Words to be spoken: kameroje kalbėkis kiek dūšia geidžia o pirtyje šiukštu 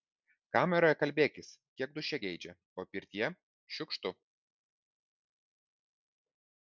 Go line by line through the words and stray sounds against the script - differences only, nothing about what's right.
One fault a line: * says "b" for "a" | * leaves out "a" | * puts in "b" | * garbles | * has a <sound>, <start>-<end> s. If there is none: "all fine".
all fine